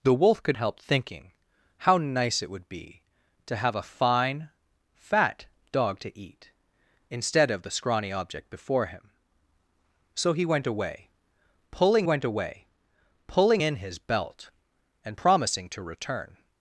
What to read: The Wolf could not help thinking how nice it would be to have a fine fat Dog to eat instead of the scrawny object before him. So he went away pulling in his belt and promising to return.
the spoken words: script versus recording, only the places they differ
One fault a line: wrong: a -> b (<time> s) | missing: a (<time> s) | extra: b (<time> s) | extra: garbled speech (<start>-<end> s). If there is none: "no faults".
missing: not (0.6 s)
extra: went away pulling (12.0 s)